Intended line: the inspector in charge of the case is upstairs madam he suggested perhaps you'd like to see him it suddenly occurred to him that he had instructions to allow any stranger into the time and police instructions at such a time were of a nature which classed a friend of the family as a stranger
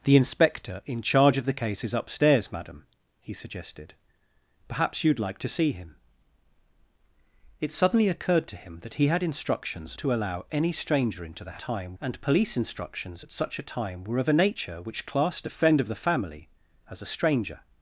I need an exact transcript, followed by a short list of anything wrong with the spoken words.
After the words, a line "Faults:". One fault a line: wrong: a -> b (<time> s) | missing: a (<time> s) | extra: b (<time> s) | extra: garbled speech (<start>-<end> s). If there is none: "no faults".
the inspector in charge of the case is upstairs madam he suggested perhaps you'd like to see him it suddenly occurred to him that he had instructions to allow any stranger into the time and police instructions at such a time were of a nature which classed a friend of the family as a stranger
Faults:
no faults